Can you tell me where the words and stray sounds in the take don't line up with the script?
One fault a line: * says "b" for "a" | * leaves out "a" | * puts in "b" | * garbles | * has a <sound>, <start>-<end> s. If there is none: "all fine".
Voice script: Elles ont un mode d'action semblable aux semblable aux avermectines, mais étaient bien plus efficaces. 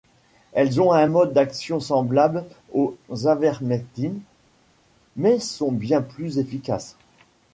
* leaves out "semblable aux"
* says "sont" for "étaient"